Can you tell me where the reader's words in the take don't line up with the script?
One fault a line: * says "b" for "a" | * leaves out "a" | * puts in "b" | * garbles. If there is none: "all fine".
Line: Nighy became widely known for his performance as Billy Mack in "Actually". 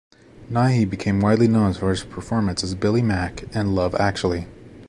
* puts in "Love"